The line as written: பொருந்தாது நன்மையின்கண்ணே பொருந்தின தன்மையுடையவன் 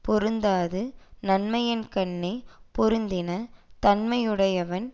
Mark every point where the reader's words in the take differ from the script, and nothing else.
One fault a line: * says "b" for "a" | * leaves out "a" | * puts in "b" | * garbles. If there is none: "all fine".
all fine